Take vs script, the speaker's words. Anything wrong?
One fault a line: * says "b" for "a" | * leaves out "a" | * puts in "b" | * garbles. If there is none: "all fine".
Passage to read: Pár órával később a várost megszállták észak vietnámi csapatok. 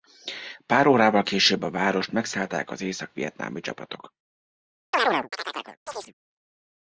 * puts in "az"